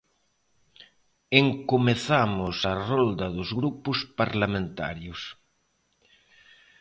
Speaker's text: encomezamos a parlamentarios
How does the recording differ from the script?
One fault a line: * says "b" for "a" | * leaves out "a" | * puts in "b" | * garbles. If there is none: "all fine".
* puts in "rolda dos grupos"